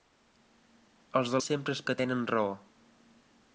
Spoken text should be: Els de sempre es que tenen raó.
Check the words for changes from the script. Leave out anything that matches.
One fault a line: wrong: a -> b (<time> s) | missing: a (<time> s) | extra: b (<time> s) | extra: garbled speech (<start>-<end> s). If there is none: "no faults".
no faults